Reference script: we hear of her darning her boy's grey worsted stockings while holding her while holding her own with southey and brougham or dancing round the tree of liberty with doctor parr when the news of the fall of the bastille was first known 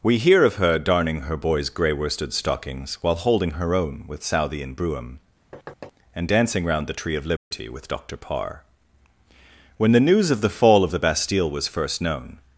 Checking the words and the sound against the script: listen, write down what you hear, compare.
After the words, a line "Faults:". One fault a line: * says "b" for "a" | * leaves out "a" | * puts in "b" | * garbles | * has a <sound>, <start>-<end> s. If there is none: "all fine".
we hear of her darning her boy's grey worsted stockings while holding her own with southey and brougham and dancing round the tree of liberty with doctor parr when the news of the fall of the bastille was first known
Faults:
* leaves out "while holding her"
* has a thud, 5.5-5.9 s
* says "and" for "or"
* has a dropout, 7.4-7.5 s